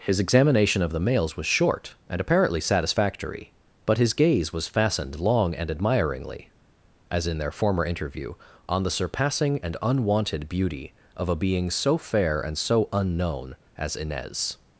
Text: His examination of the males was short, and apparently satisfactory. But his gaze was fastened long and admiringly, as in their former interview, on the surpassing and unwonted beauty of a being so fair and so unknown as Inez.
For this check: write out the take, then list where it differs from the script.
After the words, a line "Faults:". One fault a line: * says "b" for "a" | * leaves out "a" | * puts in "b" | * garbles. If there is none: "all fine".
His examination of the males was short, and apparently satisfactory. But his gaze was fastened long and admiringly, as in their former interview, on the surpassing and unwonted beauty of a being so fair and so unknown as Inez.
Faults:
all fine